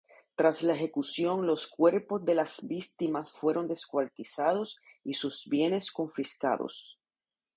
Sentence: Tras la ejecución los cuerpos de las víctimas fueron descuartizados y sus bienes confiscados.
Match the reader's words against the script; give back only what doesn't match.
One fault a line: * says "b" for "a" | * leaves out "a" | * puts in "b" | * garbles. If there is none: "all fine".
all fine